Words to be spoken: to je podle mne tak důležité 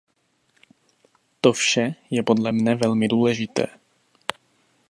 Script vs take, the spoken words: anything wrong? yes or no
yes